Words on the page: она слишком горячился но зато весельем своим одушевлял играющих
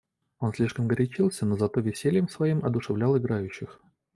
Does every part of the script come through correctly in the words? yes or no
no